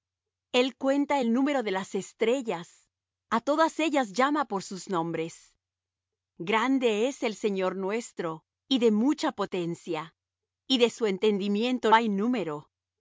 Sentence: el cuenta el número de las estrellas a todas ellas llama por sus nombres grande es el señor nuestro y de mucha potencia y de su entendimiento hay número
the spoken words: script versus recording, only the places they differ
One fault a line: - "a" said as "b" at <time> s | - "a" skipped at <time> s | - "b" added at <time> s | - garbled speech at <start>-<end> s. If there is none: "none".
none